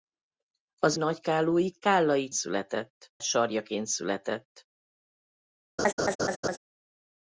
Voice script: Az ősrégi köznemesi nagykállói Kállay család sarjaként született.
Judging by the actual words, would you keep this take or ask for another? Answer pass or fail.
fail